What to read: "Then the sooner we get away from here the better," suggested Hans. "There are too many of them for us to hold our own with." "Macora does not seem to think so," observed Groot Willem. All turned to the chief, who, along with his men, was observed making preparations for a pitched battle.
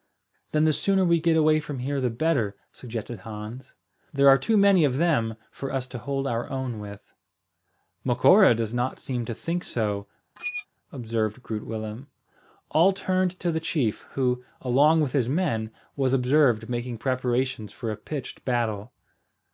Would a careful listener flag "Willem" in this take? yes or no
no